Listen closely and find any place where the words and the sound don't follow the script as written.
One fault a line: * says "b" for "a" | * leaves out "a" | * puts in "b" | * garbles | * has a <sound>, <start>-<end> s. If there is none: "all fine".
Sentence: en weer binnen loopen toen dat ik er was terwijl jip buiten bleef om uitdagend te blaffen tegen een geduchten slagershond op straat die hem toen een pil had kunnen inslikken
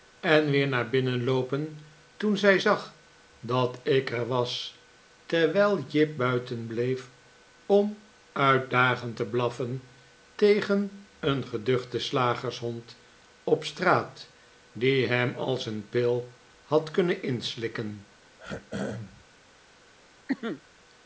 * puts in "naar"
* puts in "zij zag"
* says "als" for "toen"
* has a throat clearing, 18.4-19.3 s
* has a cough, 20.3-20.6 s